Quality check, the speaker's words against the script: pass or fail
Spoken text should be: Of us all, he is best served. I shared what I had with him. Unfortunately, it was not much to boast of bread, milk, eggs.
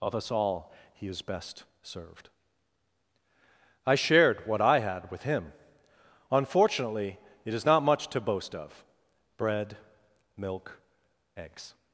fail